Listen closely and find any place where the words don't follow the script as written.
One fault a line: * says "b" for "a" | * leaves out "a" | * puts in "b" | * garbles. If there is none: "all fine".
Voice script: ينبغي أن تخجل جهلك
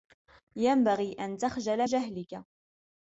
all fine